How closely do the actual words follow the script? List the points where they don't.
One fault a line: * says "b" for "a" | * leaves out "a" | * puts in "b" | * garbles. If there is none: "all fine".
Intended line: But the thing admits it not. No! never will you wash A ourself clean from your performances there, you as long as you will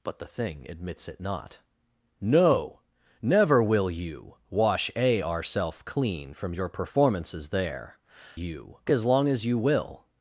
all fine